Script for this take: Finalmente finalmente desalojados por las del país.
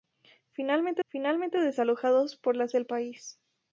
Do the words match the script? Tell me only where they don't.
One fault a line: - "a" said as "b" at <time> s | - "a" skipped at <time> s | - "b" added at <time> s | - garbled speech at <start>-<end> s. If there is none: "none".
none